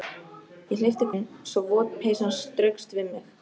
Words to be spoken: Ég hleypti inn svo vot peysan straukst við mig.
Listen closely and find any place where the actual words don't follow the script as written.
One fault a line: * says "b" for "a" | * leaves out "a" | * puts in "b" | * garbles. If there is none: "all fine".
all fine